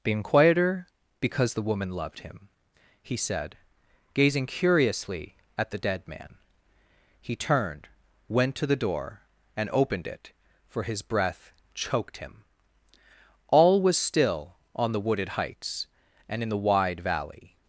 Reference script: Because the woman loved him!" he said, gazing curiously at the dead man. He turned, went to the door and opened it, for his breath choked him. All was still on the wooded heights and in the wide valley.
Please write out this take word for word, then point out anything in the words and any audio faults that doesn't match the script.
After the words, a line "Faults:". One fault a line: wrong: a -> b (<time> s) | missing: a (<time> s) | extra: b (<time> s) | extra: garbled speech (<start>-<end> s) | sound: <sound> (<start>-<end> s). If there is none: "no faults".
been quieter Because the woman loved him!" he said, gazing curiously at the dead man. He turned, went to the door and opened it, for his breath choked him. All was still on the wooded heights and in the wide valley.
Faults:
extra: been quieter (0.0 s)